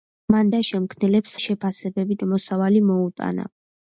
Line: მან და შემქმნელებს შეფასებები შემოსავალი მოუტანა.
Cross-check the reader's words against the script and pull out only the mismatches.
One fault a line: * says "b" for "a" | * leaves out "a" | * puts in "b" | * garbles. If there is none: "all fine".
all fine